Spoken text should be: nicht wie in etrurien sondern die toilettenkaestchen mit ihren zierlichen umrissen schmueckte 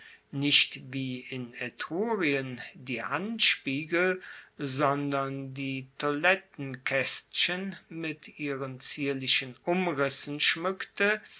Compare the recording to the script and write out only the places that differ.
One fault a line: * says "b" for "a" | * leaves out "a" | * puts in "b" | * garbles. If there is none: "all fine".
* puts in "die handspiegel"